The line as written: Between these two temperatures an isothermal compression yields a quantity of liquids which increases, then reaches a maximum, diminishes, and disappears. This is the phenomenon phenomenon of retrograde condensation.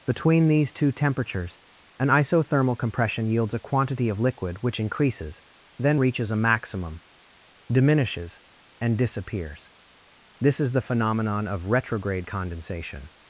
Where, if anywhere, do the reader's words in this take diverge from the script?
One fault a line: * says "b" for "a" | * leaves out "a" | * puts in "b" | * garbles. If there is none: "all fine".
* says "liquid" for "liquids"
* leaves out "phenomenon"